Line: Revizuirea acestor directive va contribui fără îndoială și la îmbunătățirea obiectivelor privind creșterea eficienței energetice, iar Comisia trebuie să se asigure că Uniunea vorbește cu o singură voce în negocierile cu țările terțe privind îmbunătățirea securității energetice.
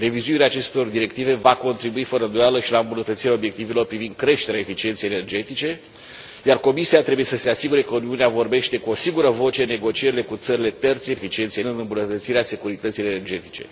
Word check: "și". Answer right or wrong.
right